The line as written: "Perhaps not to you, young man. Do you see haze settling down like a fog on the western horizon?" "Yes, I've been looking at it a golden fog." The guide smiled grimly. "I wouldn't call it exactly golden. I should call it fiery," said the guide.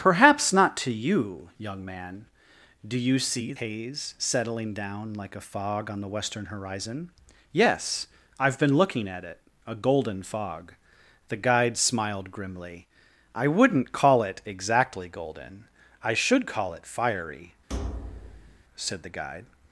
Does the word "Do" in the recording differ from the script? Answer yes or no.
no